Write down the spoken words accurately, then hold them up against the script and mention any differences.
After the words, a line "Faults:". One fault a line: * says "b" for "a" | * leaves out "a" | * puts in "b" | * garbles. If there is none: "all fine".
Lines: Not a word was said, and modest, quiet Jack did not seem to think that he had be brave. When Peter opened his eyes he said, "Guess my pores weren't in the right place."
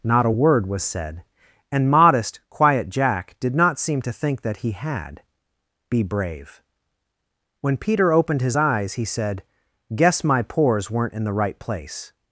Not a word was said, and modest, quiet Jack did not seem to think that he had be brave. When Peter opened his eyes he said, "Guess my pores weren't in the right place."
Faults:
all fine